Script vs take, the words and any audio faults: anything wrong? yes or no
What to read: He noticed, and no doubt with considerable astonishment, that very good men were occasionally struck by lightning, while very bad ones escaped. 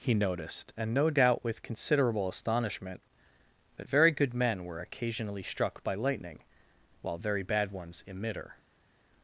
yes